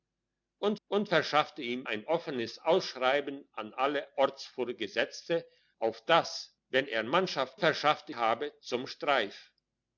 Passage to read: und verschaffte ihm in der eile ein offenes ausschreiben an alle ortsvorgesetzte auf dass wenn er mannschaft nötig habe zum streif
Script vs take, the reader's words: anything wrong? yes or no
yes